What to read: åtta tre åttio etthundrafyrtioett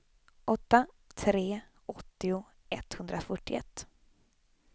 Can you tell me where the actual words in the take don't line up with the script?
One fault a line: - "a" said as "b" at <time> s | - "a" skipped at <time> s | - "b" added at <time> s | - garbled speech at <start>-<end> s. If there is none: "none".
none